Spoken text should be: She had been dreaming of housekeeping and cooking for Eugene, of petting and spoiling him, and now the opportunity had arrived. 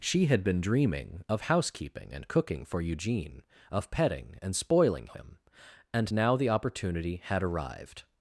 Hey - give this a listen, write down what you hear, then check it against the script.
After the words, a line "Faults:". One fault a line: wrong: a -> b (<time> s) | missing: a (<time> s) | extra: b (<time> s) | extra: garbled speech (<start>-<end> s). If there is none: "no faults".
She had been dreaming of housekeeping and cooking for Eugene, of petting and spoiling him, and now the opportunity had arrived.
Faults:
no faults